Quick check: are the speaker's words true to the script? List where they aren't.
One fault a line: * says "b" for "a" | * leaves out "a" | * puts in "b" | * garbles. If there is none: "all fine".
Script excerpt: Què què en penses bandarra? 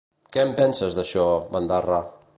* leaves out "què"
* puts in "d'això"